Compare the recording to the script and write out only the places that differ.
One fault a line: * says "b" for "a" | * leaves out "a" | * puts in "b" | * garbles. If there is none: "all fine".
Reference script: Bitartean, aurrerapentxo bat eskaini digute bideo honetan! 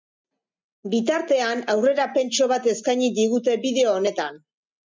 all fine